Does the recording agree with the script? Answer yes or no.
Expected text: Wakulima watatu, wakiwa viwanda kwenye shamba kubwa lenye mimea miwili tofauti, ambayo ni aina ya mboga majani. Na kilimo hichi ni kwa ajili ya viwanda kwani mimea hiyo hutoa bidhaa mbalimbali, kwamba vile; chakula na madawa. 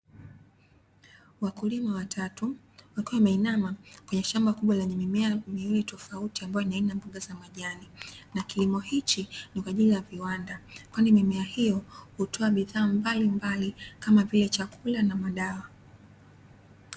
no